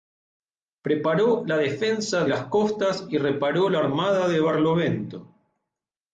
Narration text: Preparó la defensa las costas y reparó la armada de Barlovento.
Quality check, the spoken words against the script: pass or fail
pass